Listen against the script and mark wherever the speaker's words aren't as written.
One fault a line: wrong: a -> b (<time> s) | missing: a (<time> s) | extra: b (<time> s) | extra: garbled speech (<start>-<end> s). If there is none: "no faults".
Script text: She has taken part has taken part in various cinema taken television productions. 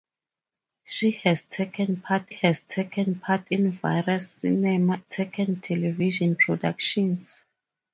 no faults